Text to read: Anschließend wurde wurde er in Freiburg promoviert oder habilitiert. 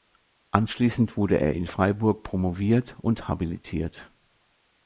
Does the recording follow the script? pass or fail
fail